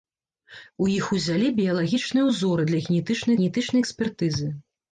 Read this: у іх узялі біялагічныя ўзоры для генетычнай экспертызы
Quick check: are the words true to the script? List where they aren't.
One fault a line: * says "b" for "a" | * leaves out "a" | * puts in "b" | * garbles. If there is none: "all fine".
* puts in "генетычнай"